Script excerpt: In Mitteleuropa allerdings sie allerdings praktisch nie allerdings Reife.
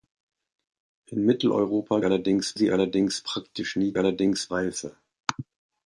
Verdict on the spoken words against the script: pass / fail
pass